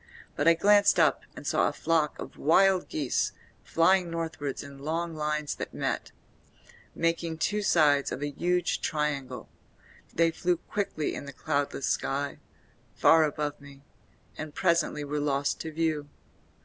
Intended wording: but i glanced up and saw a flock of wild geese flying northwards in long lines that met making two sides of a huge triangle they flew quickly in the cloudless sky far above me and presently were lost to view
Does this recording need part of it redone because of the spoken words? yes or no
no